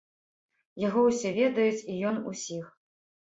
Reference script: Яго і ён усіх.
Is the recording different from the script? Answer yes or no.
yes